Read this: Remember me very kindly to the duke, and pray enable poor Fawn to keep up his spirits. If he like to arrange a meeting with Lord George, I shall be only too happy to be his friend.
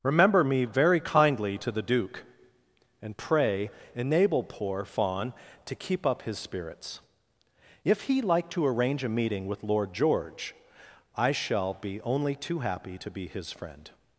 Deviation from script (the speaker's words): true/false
false